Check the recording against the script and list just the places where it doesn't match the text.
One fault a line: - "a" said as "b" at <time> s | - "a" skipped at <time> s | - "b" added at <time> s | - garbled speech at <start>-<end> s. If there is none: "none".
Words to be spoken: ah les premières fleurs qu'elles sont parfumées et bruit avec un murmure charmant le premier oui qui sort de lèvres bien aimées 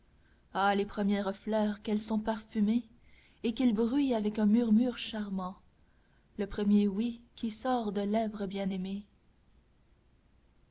- "qu'il" added at 3.5 s